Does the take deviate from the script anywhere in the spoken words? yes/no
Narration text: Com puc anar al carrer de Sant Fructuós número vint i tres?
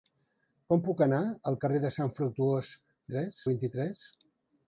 yes